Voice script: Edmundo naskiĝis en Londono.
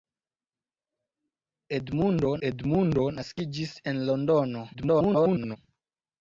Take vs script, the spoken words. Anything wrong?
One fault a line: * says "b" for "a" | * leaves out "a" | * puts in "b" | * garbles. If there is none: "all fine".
* puts in "edmundo"
* garbles